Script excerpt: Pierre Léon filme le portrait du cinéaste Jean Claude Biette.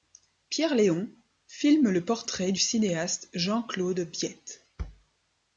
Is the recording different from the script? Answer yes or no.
no